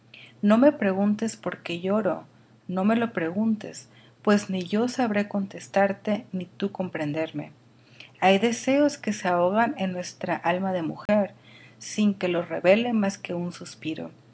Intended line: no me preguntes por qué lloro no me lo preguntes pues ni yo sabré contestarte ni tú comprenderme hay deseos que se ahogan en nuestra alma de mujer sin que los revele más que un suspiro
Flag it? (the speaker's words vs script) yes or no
no